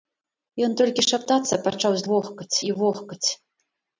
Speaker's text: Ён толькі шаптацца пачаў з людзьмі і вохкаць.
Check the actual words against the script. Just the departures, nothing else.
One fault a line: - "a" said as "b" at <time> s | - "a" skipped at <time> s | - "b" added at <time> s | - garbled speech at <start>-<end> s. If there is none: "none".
- "людзьмі" said as "вохкаць" at 2.1 s